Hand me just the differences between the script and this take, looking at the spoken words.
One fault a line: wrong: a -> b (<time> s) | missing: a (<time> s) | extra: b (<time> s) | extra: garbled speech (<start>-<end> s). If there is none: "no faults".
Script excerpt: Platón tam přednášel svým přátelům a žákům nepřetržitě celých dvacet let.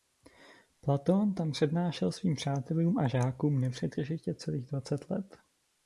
no faults